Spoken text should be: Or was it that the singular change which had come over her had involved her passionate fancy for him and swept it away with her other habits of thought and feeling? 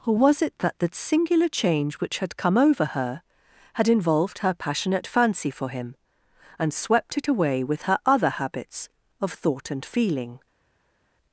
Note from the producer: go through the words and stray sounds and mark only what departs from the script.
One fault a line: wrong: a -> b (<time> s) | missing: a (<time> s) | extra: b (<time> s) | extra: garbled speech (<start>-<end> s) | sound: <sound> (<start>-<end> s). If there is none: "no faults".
no faults